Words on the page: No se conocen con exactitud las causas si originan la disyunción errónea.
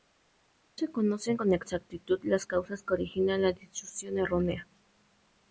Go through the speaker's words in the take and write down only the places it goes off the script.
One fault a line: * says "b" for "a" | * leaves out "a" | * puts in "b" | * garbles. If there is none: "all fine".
* says "que" for "si"